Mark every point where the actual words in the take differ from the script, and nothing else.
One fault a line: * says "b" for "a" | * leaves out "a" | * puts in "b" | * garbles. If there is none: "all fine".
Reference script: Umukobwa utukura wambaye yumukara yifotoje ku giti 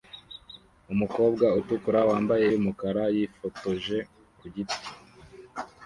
all fine